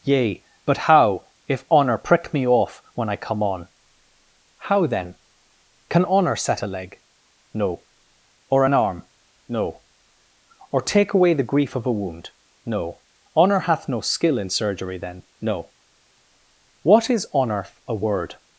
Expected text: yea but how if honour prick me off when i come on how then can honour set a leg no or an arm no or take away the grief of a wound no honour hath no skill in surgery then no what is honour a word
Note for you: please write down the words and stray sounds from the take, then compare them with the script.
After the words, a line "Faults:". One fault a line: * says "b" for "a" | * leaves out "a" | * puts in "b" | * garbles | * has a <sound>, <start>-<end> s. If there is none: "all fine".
yea but how if honour prick me off when i come on how then can honour set a leg no or an arm no or take away the grief of a wound no honour hath no skill in surgery then no what is honour a word
Faults:
all fine